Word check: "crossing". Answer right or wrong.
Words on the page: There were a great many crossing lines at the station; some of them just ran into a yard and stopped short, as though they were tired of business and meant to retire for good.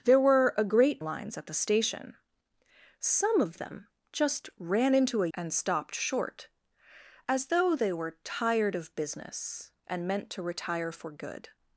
wrong